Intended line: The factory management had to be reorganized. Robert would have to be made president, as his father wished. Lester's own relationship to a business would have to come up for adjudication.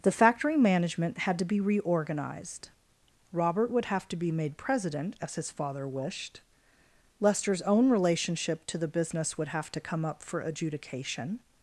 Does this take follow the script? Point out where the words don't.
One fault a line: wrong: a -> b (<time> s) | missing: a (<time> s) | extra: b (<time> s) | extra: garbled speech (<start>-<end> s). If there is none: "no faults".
wrong: a -> the (8.8 s)